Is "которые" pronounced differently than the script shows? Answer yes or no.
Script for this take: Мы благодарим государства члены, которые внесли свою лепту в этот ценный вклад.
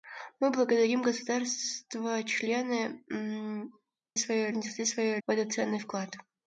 yes